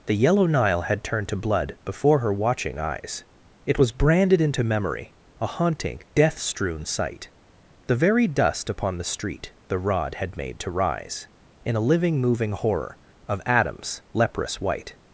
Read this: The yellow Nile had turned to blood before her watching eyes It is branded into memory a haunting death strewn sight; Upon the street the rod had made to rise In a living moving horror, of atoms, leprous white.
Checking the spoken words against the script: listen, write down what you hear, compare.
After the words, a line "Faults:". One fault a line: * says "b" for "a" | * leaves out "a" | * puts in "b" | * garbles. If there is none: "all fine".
The yellow Nile had turned to blood before her watching eyes It was branded into memory a haunting death strewn sight; The very dust upon the street the rod had made to rise In a living moving horror, of atoms, leprous white.
Faults:
* says "was" for "is"
* puts in "The very dust"